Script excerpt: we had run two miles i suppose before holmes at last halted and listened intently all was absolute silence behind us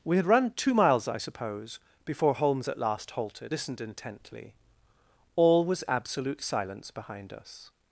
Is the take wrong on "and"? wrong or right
wrong